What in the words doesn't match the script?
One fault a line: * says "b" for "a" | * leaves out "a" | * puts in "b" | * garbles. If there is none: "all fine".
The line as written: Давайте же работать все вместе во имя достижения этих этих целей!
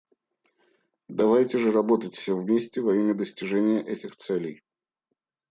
* leaves out "этих"